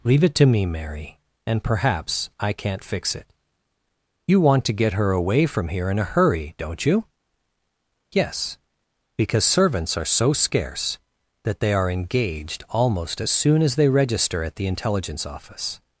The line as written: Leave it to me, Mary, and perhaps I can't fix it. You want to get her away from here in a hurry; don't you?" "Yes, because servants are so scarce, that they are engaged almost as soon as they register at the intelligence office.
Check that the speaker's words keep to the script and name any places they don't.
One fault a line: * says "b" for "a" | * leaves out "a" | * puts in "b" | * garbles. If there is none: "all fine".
all fine